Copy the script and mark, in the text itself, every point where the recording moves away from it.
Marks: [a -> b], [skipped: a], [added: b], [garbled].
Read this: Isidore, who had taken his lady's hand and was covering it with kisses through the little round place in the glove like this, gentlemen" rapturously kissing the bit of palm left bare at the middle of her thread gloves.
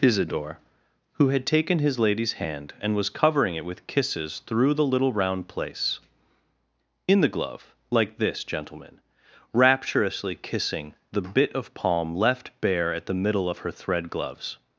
Isidore, who had taken his lady's hand and was covering it with kisses through the little round place in the glove like this, gentlemen" rapturously kissing the bit of palm left bare at the middle of her thread gloves.